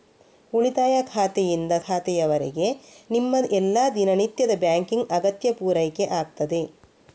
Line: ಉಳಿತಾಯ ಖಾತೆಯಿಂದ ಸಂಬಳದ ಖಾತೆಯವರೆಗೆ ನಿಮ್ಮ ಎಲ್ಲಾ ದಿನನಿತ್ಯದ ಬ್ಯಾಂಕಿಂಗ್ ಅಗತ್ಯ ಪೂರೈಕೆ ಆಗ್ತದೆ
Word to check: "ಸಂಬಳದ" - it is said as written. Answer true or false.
false